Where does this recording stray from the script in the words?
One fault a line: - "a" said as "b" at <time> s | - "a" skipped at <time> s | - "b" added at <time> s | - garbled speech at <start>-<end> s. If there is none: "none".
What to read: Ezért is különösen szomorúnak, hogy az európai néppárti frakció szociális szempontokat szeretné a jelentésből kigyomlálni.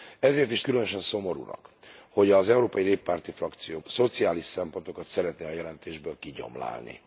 none